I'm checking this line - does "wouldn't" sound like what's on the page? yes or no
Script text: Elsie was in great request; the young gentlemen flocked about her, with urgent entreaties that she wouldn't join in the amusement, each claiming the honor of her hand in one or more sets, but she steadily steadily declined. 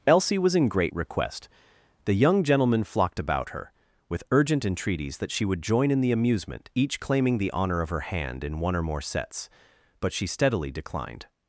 no